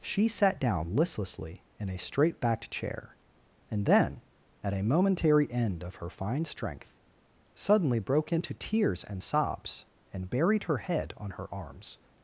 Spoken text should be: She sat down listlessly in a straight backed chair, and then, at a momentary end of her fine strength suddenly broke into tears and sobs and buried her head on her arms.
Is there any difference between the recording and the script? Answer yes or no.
no